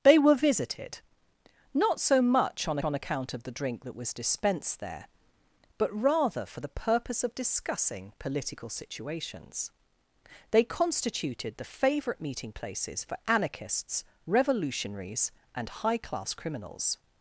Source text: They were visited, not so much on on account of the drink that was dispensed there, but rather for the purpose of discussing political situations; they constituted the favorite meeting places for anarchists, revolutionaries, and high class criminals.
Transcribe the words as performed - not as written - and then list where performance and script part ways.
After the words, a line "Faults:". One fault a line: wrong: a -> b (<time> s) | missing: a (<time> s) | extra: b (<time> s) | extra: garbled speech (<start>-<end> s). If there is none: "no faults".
They were visited, not so much on on account of the drink that was dispensed there, but rather for the purpose of discussing political situations; they constituted the favorite meeting places for anarchists, revolutionaries, and high class criminals.
Faults:
no faults